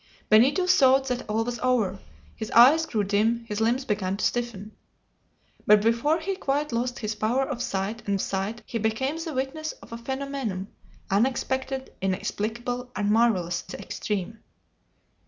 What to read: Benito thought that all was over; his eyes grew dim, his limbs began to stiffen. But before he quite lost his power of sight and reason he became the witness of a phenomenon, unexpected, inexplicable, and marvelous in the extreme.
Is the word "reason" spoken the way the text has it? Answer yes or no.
no